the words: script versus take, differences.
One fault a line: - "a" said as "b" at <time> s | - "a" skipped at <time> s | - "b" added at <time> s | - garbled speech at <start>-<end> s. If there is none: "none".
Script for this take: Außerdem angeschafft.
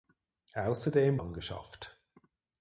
none